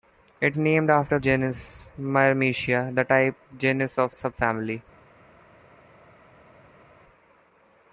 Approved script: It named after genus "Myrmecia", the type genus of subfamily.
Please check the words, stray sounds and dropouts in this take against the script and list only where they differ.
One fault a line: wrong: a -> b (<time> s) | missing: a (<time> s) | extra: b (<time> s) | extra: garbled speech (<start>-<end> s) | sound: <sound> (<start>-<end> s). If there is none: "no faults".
no faults